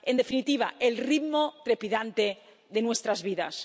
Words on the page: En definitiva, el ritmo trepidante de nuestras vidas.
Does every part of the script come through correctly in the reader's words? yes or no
yes